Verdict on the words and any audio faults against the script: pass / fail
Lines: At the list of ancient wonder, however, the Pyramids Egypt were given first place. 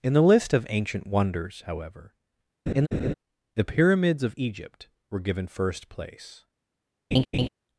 fail